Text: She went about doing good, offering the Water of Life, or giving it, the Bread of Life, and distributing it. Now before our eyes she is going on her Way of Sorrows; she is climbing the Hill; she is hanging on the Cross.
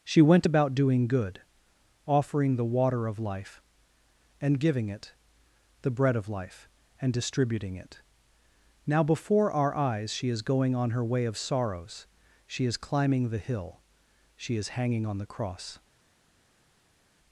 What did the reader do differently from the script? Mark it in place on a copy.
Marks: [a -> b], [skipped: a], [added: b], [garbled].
She went about doing good, offering the Water of Life, [or -> and] giving it, the Bread of Life, and distributing it. Now before our eyes she is going on her Way of Sorrows; she is climbing the Hill; she is hanging on the Cross.